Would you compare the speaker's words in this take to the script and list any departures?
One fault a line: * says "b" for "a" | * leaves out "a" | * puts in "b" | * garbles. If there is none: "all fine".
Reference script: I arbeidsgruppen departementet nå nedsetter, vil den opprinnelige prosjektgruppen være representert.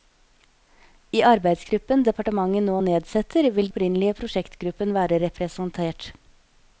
* leaves out "den"